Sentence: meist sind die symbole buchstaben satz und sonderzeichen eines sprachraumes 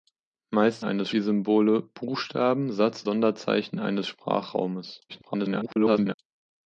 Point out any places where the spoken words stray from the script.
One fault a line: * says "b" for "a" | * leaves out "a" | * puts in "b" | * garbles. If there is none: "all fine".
* says "eines" for "sind"
* leaves out "und"
* garbles